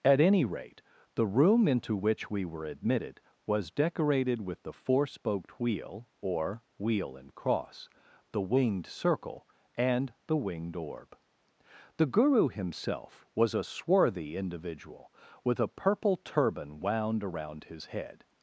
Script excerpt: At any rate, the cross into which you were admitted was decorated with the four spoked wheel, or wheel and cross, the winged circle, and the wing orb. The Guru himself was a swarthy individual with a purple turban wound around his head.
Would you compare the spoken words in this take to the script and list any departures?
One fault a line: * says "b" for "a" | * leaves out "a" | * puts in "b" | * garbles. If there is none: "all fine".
* says "room" for "cross"
* says "we" for "you"
* says "winged" for "wing"